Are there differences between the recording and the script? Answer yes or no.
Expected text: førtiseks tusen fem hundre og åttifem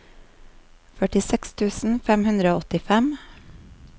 no